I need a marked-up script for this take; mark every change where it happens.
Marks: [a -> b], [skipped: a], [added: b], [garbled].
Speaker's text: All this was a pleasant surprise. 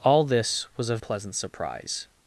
All this was a pleasant surprise.